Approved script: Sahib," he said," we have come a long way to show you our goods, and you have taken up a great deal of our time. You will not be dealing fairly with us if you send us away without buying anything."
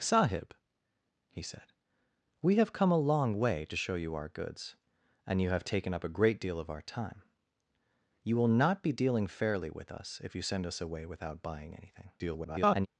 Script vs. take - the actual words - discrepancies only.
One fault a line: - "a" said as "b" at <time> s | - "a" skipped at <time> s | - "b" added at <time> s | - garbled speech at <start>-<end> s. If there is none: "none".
- garbled speech at 12.2-12.9 s